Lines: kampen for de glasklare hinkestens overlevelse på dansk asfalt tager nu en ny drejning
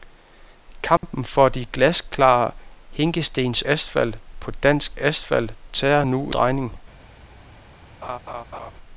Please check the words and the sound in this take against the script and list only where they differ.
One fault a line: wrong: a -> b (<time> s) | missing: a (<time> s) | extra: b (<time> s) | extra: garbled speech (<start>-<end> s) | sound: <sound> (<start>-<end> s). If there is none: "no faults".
sound: dropout (1.0-1.0 s)
wrong: overlevelse -> asfalt (3.7 s)
missing: en ny (6.3 s)
sound: laugh (8.0-8.7 s)